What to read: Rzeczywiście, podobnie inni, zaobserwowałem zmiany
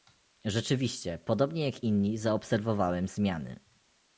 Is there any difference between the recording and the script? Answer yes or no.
yes